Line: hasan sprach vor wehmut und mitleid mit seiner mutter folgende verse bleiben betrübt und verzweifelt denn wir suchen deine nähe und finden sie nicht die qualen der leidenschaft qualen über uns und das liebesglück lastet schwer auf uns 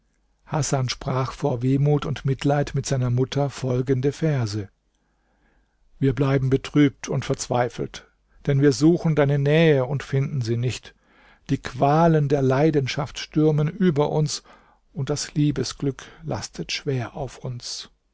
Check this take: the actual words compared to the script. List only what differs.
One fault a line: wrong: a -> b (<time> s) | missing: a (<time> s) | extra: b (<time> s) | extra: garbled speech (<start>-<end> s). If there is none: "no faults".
extra: wir (6.0 s)
wrong: qualen -> stürmen (13.2 s)